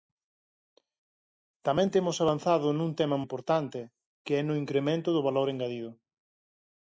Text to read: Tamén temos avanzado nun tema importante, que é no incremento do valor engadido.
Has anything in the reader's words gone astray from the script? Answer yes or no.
no